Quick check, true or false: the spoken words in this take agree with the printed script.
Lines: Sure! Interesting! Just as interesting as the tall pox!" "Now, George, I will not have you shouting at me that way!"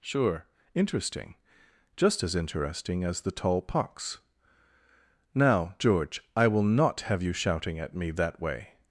true